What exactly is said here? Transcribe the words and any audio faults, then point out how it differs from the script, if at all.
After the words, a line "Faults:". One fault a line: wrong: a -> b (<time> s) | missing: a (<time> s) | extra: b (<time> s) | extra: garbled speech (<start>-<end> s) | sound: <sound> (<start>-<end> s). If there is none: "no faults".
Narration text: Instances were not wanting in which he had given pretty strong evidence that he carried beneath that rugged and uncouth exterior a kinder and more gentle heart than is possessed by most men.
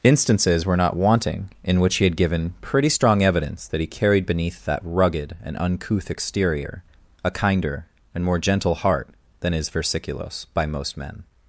Instances were not wanting in which he had given pretty strong evidence that he carried beneath that rugged and uncouth exterior a kinder and more gentle heart than is versiculos by most men.
Faults:
wrong: possessed -> versiculos (9.7 s)